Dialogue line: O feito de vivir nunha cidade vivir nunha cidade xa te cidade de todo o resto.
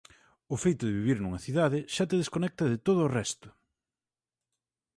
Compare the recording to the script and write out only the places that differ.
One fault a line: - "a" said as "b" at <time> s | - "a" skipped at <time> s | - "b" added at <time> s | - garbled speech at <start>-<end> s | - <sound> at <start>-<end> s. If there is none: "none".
- "vivir nunha cidade" skipped at 1.8 s
- "cidade" said as "desconecta" at 2.2 s